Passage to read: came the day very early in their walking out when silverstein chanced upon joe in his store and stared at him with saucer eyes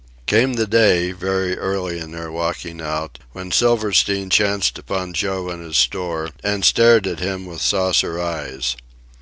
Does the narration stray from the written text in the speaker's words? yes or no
no